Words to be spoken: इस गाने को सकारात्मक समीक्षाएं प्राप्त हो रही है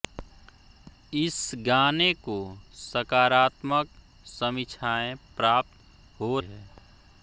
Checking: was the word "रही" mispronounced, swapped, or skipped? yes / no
yes